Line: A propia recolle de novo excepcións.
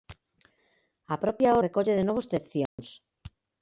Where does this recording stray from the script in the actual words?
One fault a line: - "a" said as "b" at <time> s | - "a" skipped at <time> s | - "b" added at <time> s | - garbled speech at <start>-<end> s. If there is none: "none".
none